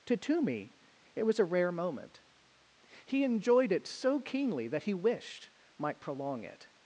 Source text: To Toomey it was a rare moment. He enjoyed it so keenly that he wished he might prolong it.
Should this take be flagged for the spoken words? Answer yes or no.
yes